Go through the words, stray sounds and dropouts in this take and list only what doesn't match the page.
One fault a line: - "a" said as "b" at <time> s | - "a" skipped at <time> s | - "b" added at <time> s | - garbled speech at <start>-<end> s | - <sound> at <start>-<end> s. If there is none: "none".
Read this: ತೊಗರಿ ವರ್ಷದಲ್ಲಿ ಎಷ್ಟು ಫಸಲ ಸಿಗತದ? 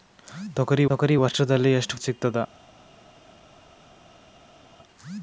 - "ತೊಗರಿ" added at 0.9 s
- "ಫಸಲ" skipped at 2.0 s